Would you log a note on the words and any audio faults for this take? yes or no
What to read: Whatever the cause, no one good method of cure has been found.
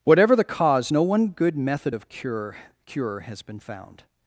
yes